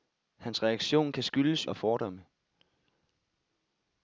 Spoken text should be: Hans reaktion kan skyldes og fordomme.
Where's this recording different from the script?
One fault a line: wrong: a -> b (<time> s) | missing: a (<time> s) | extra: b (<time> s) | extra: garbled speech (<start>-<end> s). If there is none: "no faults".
no faults